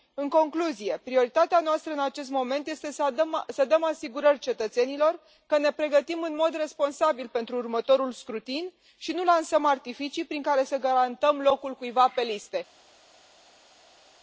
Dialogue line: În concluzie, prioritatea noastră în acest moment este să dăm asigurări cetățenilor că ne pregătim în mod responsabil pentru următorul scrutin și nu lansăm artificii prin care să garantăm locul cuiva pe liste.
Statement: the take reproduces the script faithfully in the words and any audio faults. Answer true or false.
true